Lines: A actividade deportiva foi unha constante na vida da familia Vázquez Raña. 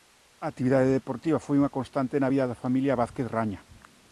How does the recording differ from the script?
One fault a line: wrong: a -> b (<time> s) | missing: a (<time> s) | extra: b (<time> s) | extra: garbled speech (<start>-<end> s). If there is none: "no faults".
no faults